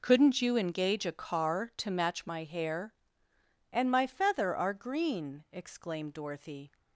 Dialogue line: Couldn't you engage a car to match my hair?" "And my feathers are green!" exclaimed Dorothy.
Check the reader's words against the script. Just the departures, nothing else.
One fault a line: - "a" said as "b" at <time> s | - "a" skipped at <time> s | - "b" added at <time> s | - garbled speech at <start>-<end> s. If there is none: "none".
- "feathers" said as "feather" at 4.1 s